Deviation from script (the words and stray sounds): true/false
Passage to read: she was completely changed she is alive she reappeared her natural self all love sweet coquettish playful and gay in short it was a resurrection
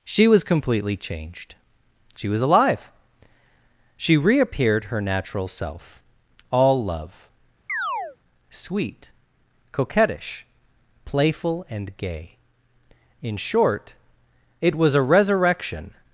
true